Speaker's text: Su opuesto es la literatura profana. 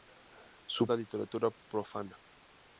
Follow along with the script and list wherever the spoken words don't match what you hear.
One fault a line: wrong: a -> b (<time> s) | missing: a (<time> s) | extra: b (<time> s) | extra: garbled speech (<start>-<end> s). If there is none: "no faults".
missing: opuesto es (0.8 s)